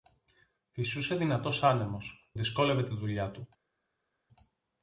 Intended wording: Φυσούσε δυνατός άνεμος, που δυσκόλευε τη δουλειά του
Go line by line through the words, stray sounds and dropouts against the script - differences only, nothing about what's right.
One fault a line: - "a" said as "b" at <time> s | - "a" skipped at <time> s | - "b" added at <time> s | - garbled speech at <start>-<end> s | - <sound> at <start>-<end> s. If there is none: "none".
- "που" skipped at 2.3 s